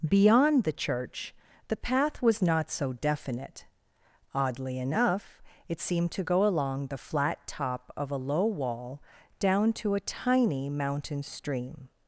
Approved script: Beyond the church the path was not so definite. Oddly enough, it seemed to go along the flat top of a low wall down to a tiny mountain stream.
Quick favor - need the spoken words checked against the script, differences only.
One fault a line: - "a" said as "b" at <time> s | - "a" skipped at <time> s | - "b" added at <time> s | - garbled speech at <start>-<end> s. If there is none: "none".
none